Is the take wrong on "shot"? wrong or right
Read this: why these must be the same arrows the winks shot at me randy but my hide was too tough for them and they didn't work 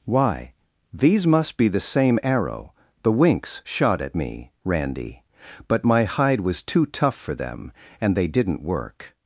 right